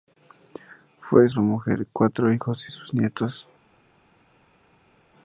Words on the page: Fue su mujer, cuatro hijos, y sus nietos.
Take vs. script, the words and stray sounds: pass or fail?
pass